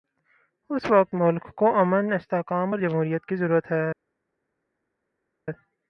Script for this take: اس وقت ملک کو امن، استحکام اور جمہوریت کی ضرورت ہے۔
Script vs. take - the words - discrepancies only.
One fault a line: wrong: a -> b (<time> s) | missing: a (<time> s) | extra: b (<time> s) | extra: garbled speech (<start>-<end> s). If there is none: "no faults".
no faults